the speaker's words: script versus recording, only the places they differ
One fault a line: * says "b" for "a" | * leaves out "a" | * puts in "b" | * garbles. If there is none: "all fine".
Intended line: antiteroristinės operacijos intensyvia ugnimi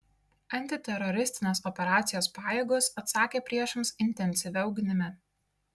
* puts in "pajėgos atsakė priešams"